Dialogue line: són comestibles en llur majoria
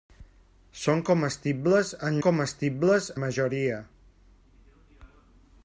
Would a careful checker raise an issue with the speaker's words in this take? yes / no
yes